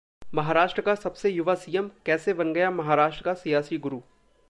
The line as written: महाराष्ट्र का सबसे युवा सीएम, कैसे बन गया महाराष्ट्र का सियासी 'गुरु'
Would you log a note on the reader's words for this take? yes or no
no